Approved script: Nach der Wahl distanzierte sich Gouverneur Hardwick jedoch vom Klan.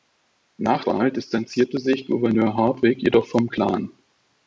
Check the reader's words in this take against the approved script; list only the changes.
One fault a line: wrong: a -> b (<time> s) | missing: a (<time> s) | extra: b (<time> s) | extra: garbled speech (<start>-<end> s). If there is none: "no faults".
missing: der (0.8 s)